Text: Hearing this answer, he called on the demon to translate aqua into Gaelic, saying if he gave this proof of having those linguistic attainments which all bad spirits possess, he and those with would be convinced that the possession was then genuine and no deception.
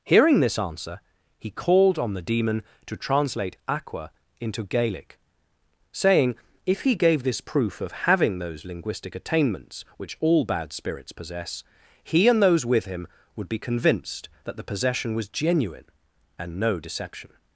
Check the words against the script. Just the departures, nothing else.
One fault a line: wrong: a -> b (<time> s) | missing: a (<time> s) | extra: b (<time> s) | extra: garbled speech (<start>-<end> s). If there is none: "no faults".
extra: him (12.8 s)
missing: then (15.3 s)